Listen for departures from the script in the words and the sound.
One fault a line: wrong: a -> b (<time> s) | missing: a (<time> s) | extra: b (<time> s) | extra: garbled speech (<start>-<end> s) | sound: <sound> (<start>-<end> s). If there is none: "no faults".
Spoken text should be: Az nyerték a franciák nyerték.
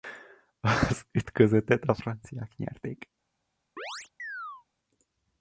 wrong: nyerték -> ütközetet (1.1 s)
sound: chirp (3.8-4.7 s)